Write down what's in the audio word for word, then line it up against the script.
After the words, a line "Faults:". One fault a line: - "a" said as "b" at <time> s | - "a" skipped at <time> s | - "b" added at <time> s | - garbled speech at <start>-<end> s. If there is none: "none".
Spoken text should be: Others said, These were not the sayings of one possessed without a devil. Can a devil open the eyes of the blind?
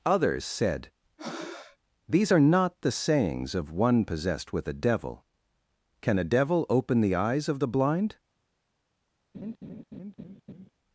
Others said, These are not the sayings of one possessed with a devil. Can a devil open the eyes of the blind?
Faults:
- "were" said as "are" at 2.3 s
- "without" said as "with" at 4.5 s